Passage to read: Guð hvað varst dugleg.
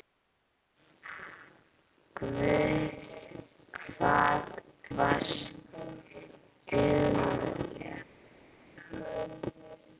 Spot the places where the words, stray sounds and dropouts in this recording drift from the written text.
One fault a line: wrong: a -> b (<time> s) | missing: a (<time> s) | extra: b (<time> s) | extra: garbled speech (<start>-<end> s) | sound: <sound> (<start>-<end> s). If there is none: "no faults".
no faults